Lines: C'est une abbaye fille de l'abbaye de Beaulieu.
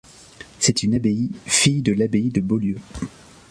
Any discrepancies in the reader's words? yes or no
no